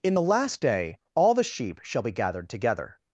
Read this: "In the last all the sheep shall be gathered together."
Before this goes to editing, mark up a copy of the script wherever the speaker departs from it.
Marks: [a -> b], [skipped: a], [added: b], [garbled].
"In the last [added: day] all the sheep shall be gathered together."